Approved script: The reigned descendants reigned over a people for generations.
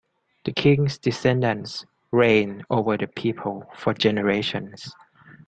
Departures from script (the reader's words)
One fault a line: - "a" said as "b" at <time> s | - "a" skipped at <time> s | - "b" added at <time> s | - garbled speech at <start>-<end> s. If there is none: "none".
- "reigned" said as "king's" at 0.5 s
- "a" said as "the" at 3.0 s